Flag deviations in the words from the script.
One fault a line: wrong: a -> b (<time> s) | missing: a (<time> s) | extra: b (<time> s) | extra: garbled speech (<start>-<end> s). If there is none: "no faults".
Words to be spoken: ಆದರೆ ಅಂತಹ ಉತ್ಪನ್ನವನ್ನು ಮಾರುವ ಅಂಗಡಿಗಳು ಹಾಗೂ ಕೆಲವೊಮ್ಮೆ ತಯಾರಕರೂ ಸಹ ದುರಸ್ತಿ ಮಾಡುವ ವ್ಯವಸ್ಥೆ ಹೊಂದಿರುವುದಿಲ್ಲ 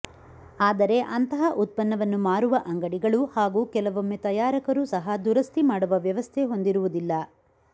no faults